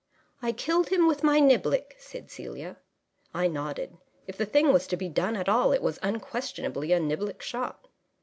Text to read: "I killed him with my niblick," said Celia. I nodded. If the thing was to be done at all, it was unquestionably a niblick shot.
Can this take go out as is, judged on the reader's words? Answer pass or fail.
pass